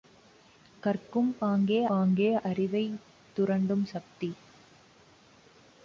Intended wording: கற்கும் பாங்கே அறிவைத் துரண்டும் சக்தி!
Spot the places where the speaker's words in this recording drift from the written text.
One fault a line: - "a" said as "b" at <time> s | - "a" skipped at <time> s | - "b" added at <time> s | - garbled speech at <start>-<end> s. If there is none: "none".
- "பாங்கே" added at 1.9 s